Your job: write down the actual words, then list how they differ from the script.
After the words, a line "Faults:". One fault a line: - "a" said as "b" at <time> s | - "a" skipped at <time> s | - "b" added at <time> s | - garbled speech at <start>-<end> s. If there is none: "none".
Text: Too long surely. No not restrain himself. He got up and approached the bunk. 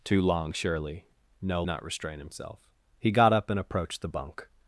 Too long surely. No not restrain himself. He got up and approached the bunk.
Faults:
none